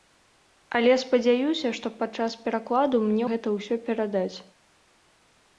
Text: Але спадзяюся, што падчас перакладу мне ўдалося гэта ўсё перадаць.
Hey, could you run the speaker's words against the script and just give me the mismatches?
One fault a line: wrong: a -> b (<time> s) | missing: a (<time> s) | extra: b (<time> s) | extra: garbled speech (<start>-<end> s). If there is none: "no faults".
missing: ўдалося (3.2 s)